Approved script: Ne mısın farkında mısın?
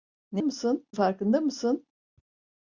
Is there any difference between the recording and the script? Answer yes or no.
no